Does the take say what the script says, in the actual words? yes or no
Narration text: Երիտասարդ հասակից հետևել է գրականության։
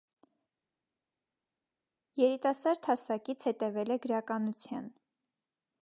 yes